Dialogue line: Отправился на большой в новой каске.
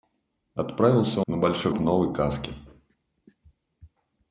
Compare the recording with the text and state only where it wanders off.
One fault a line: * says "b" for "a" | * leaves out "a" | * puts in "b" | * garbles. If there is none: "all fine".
all fine